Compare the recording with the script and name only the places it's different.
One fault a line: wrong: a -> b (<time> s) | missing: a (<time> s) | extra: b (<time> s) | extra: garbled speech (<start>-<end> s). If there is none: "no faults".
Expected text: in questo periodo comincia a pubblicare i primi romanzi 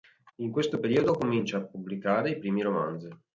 no faults